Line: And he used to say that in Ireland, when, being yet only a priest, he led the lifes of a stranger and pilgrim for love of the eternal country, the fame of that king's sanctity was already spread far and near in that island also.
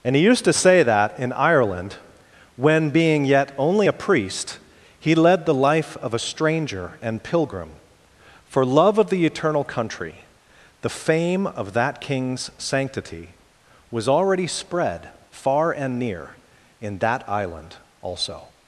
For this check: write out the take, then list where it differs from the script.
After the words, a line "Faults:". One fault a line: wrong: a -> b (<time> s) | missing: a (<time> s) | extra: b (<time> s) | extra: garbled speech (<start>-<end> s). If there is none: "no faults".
And he used to say that in Ireland, when, being yet only a priest, he led the life of a stranger and pilgrim for love of the eternal country, the fame of that king's sanctity was already spread far and near in that island also.
Faults:
wrong: lifes -> life (5.5 s)